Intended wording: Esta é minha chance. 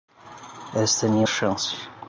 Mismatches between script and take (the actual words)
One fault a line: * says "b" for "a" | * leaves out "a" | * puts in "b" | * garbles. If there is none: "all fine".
all fine